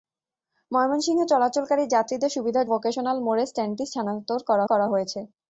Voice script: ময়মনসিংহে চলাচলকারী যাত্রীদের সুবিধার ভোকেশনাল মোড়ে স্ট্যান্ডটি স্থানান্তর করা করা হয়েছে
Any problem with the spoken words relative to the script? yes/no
no